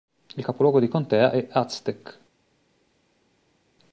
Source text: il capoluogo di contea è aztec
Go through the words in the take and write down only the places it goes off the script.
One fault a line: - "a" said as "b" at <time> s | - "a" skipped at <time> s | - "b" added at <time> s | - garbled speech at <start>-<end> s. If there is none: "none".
none